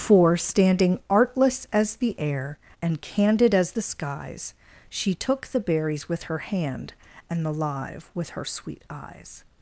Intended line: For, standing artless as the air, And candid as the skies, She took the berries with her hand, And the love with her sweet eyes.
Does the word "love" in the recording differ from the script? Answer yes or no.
yes